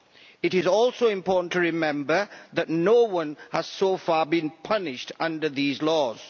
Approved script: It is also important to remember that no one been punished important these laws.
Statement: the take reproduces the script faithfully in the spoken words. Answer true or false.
false